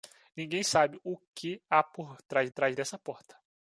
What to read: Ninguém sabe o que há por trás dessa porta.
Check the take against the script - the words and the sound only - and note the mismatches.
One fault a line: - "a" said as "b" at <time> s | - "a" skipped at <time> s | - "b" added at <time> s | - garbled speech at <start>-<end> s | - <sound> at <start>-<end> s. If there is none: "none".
- "trás" added at 2.5 s